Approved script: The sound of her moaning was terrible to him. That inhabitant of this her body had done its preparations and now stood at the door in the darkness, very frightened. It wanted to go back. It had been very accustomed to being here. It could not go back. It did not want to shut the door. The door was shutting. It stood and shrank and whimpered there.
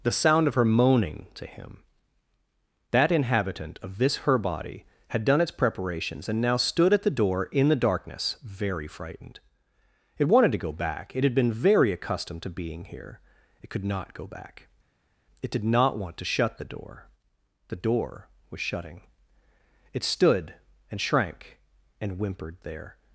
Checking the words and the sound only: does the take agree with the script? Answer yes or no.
no